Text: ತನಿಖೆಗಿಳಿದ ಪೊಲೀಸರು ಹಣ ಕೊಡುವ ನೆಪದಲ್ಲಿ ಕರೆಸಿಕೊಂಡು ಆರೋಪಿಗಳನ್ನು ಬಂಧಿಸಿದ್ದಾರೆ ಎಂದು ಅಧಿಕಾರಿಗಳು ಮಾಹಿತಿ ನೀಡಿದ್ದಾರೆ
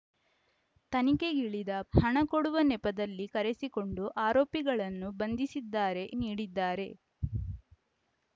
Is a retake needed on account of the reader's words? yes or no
yes